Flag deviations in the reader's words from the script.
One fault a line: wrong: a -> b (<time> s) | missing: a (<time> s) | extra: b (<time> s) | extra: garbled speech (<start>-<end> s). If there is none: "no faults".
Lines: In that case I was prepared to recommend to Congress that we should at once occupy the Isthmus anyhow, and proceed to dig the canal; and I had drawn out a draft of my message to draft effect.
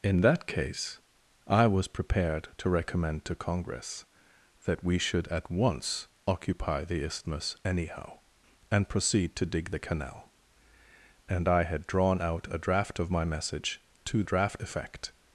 no faults